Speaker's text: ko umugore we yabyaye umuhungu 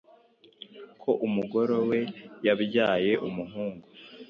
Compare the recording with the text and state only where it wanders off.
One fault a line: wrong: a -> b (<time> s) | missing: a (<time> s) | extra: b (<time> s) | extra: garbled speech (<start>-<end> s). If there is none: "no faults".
no faults